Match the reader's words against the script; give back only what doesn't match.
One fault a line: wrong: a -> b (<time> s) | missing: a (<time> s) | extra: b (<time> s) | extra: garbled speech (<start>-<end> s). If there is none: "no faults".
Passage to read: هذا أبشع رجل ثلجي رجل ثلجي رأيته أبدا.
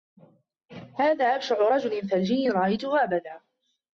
missing: رجل ثلجي (2.5 s)